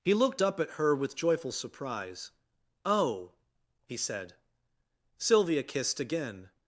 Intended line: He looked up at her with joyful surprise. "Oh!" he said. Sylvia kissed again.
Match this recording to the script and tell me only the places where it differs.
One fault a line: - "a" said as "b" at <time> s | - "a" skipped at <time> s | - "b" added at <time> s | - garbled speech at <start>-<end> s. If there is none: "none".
none